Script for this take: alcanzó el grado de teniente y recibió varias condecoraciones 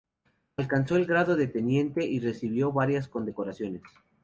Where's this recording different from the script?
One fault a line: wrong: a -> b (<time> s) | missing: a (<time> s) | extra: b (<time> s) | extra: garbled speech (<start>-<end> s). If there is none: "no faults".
no faults